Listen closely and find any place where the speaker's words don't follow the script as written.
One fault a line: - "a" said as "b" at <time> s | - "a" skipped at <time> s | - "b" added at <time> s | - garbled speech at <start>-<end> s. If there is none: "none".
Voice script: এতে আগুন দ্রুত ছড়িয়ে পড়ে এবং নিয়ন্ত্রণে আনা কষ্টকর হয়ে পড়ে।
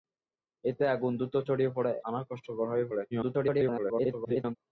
- "এবং নিয়ন্ত্রণে" skipped at 1.9 s
- garbled speech at 3.1-4.6 s